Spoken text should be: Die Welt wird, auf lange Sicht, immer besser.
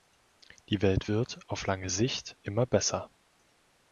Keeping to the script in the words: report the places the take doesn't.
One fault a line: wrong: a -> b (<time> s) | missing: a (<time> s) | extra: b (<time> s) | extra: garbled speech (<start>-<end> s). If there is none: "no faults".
no faults